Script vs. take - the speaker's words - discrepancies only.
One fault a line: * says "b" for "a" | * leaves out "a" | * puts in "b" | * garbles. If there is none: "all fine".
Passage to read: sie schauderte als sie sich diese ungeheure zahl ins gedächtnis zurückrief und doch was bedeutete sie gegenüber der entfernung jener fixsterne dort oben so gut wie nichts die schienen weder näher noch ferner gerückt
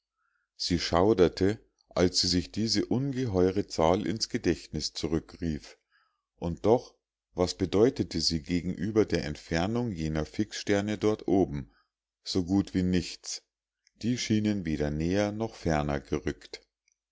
all fine